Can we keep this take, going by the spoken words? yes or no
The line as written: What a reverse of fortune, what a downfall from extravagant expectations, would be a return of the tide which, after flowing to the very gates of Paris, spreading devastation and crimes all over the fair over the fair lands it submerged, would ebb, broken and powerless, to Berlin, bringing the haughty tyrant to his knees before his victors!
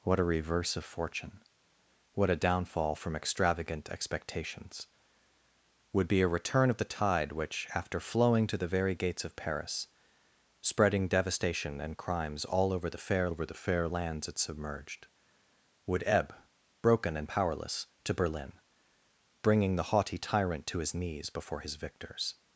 yes